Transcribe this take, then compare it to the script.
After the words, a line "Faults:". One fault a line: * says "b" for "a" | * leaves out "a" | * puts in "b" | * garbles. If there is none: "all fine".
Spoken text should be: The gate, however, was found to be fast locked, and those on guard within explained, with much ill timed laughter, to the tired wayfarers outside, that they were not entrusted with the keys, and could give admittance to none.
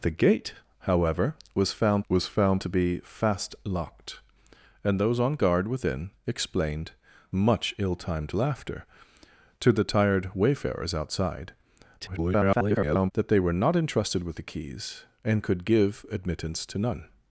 The gate, however, was found was found to be fast locked, and those on guard within explained, much ill timed laughter, to the tired wayfarers outside, [garbled] that they were not entrusted with the keys, and could give admittance to none.
Faults:
* puts in "was found"
* leaves out "with"
* garbles